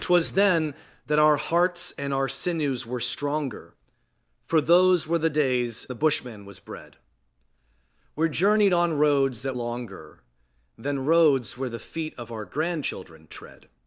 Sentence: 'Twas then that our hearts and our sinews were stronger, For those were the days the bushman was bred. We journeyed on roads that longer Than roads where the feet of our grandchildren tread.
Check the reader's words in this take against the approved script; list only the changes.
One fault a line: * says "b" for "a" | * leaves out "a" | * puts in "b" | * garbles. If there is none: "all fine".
all fine